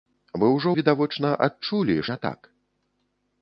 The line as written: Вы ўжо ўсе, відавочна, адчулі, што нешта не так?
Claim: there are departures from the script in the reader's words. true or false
true